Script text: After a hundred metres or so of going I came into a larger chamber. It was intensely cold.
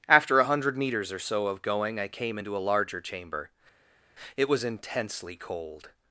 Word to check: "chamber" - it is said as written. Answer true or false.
true